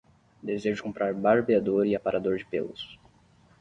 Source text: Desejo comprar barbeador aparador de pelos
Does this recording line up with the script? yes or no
no